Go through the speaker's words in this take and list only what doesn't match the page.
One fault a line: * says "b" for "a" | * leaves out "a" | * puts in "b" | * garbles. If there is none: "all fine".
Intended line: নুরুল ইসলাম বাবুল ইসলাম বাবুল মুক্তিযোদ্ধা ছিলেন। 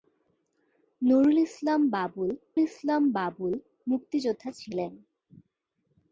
all fine